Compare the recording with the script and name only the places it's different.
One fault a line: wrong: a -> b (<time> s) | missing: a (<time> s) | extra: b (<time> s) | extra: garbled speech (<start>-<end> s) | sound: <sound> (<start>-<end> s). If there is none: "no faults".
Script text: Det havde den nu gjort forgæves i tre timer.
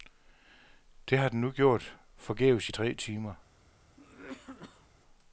wrong: havde -> har (1.2 s)
sound: cough (4.0-4.9 s)